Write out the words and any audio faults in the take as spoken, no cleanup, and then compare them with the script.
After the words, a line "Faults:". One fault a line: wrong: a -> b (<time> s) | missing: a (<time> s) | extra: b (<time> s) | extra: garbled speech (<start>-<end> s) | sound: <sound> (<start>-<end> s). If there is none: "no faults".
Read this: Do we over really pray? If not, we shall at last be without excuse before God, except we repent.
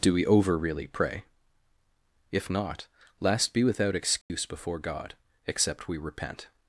Do we over really pray? If not, last be without excuse before God, except we repent.
Faults:
missing: we shall at (2.9 s)
sound: dropout (4.2-4.3 s)